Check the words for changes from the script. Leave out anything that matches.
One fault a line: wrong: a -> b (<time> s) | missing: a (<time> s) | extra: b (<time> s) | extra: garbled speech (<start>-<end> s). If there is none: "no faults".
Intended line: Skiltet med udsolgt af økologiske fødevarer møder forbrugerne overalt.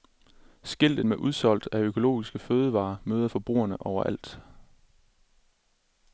no faults